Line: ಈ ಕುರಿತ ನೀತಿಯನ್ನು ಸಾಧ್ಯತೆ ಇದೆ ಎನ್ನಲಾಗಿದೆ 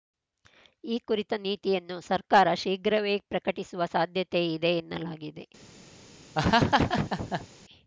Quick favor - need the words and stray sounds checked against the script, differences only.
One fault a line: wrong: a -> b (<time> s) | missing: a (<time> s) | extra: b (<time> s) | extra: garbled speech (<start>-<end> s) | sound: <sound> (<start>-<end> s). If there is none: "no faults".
extra: ಸರ್ಕಾರ ಶೀಘ್ರವೇ ಪ್ರಕಟಿಸುವ (2.1 s)
sound: laugh (6.3-7.5 s)